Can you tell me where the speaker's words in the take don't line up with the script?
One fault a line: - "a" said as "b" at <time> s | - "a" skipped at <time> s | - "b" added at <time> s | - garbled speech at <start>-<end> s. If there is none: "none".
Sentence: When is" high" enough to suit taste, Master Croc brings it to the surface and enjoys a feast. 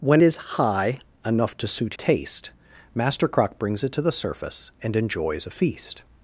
none